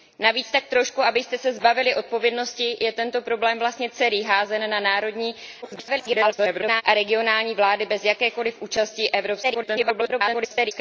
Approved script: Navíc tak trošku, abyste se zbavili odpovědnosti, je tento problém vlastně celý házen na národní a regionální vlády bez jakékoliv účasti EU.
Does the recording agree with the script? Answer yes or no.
no